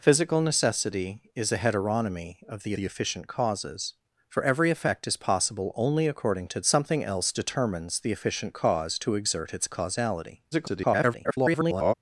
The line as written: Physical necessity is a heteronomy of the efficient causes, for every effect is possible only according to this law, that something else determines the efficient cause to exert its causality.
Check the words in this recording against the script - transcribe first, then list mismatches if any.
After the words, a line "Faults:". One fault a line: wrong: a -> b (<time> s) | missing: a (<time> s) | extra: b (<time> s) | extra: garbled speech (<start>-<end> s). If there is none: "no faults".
Physical necessity is a heteronomy of the the efficient causes, for every effect is possible only according to something else determines the efficient cause to exert its causality. [garbled]
Faults:
extra: the (2.7 s)
missing: this law that (6.6 s)
extra: garbled speech (10.5-11.9 s)